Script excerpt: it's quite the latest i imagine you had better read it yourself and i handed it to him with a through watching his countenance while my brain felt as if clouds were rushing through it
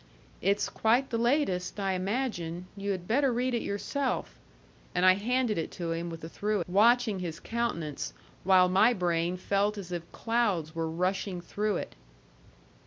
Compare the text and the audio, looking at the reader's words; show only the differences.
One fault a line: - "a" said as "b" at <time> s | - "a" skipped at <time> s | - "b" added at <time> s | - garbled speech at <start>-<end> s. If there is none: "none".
none